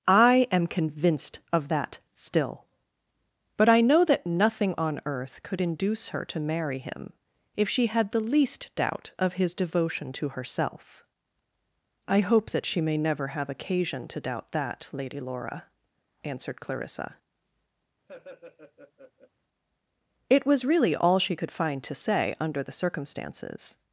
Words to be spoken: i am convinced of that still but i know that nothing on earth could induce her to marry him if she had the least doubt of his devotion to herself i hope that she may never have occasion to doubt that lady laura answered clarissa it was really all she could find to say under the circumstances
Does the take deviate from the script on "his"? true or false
false